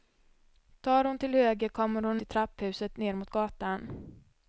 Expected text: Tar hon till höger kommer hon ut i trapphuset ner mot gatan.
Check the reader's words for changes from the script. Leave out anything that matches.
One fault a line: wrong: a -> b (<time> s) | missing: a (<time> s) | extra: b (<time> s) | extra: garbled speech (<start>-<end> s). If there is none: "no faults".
missing: ut (2.2 s)